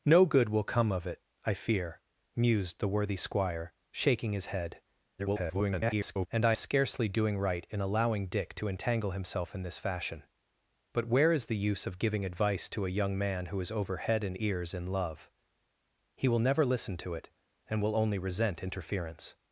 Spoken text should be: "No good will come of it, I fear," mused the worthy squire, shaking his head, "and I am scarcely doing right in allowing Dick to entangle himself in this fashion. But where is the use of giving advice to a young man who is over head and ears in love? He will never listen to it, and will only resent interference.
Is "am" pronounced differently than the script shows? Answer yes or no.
yes